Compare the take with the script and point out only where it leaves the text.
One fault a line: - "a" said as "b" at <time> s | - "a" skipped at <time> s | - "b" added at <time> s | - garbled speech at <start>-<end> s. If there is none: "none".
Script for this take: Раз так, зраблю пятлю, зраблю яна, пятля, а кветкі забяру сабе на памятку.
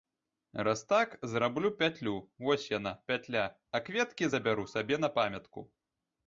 - "зраблю" said as "вось" at 2.4 s